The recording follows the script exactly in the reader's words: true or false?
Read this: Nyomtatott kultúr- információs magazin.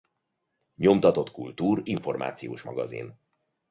true